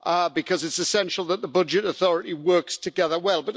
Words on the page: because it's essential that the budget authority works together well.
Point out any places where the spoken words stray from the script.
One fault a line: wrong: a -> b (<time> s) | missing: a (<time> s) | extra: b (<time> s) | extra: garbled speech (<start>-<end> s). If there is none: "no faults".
no faults